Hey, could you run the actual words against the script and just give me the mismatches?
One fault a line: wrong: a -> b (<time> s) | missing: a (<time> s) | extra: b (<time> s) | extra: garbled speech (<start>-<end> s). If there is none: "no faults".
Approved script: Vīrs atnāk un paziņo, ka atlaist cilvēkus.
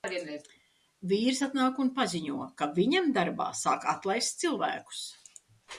extra: viņam darbā sāk (2.8 s)